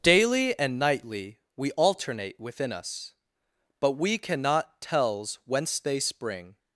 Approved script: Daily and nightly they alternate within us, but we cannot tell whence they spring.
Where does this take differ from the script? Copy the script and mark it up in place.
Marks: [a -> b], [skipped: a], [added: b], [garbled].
Daily and nightly [they -> we] alternate within us, but we cannot [tell -> tells] whence they spring.